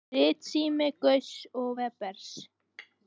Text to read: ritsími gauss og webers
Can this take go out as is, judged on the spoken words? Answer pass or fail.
pass